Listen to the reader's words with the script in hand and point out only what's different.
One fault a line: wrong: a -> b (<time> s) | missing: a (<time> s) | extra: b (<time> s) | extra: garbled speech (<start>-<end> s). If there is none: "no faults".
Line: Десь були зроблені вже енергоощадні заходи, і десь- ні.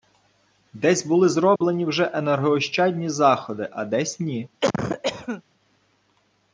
wrong: і -> а (3.7 s)